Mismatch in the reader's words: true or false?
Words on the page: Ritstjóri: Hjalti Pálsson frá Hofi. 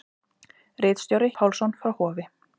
true